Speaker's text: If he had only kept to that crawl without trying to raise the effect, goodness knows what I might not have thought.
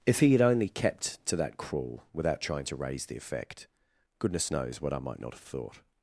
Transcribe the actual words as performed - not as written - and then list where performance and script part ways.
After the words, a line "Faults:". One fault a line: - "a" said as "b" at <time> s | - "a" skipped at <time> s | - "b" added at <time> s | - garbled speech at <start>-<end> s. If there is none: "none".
If he had only kept to that crawl without trying to raise the effect, goodness knows what I might not have thought.
Faults:
none